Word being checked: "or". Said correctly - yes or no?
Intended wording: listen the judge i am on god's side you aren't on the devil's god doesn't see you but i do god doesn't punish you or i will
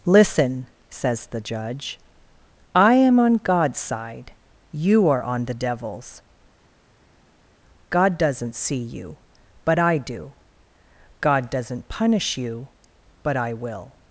no